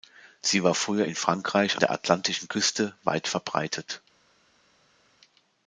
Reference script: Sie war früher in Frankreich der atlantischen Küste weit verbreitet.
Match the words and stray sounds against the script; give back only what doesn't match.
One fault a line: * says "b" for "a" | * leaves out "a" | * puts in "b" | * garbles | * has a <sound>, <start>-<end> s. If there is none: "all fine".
all fine